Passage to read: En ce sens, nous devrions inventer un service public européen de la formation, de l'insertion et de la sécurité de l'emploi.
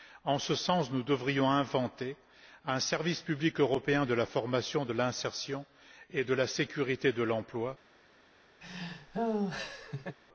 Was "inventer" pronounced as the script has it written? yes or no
yes